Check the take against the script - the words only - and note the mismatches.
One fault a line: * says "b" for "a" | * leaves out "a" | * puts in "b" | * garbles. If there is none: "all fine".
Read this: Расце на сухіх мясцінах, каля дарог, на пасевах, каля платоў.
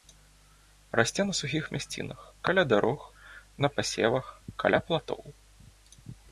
all fine